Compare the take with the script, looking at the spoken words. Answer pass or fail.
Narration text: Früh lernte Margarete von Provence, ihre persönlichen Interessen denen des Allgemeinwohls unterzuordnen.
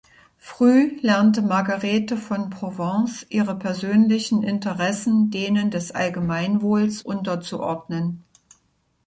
pass